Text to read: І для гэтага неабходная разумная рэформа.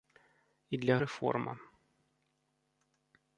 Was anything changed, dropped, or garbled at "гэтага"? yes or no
yes